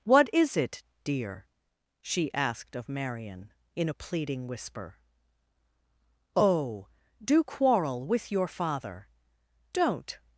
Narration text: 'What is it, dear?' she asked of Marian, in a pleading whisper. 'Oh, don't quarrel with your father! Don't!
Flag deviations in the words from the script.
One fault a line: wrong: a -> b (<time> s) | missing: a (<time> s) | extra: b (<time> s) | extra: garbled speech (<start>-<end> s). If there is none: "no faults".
wrong: don't -> do (7.2 s)